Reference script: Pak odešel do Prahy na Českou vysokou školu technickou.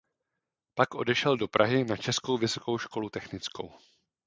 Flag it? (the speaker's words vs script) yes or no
no